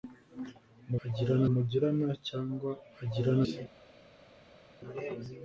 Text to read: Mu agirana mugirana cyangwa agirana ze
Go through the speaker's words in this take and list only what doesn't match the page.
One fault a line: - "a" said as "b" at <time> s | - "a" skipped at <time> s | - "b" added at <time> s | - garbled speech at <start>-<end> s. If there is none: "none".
none